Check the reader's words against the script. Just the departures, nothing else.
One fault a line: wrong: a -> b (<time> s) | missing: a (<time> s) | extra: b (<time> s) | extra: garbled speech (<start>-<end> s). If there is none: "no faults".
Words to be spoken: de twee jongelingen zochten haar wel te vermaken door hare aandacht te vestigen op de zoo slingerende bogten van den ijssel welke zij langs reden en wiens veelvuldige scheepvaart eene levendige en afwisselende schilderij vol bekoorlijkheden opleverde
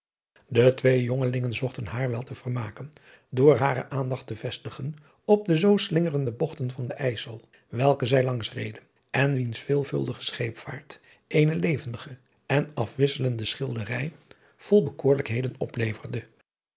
no faults